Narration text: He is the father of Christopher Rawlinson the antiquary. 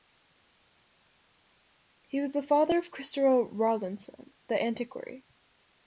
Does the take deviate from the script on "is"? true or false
true